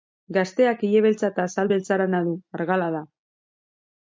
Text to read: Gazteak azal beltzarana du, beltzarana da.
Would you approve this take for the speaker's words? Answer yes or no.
no